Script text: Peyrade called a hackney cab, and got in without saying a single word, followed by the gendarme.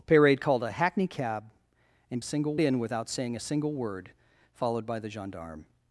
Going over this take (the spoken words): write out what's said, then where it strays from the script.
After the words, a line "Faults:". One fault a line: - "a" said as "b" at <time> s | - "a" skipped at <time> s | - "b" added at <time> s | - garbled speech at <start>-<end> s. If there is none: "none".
Peyrade called a hackney cab, and single in without saying a single word, followed by the gendarme.
Faults:
- "got" said as "single" at 2.2 s